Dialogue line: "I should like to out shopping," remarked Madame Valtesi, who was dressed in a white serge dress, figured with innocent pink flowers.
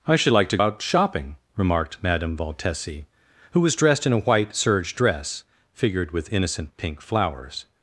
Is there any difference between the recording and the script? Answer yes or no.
no